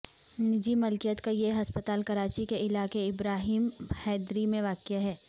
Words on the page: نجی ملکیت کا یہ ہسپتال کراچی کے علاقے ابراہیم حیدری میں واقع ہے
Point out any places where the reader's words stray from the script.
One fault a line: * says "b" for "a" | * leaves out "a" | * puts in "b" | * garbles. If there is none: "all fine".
all fine